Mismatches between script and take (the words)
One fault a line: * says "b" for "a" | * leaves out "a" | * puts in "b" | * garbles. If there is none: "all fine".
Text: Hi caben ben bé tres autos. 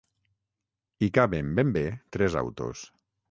all fine